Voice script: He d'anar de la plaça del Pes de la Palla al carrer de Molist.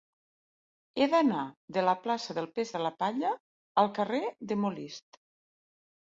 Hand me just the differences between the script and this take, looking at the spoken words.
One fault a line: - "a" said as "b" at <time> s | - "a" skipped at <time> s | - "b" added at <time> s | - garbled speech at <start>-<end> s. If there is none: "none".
none